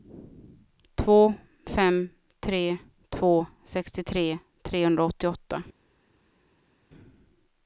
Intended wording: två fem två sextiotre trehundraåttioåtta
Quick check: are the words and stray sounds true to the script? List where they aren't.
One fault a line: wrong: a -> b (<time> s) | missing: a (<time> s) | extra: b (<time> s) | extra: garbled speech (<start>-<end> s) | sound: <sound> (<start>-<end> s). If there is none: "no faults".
extra: tre (2.4 s)